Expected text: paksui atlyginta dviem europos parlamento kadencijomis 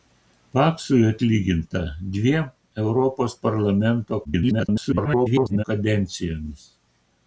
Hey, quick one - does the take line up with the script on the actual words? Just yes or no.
no